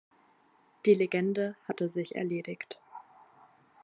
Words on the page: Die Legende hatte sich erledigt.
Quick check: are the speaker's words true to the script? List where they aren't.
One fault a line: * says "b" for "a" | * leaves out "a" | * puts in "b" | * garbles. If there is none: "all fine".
all fine